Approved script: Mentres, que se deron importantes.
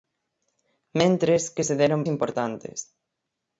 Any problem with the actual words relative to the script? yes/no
no